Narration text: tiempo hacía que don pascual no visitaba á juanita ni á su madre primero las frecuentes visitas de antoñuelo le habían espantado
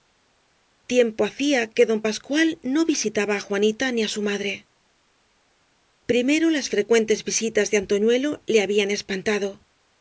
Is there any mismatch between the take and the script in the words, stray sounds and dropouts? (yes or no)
no